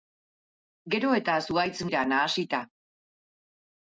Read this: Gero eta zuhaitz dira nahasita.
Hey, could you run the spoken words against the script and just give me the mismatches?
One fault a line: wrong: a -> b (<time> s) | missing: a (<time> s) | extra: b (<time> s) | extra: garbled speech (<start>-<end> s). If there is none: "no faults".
no faults